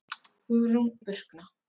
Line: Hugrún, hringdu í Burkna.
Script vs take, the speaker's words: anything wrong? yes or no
yes